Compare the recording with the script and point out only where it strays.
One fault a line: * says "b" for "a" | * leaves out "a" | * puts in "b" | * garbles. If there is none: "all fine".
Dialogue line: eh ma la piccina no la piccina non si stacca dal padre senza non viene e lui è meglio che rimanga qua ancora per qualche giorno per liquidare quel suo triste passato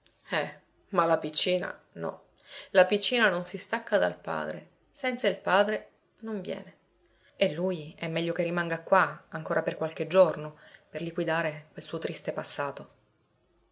* puts in "il padre"